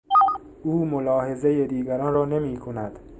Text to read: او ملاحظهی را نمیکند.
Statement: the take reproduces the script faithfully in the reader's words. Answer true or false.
false